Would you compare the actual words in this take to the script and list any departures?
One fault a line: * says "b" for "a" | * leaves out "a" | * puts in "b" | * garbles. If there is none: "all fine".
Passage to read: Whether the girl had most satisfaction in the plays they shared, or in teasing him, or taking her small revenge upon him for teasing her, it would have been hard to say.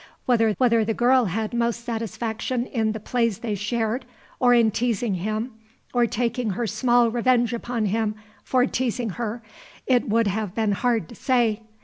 * puts in "whether"